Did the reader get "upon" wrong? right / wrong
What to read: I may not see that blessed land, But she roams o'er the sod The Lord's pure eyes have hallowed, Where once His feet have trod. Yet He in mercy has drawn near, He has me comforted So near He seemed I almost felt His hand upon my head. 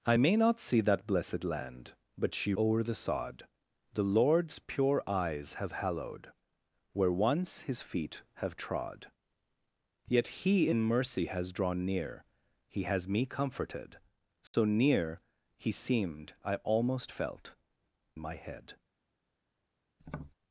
wrong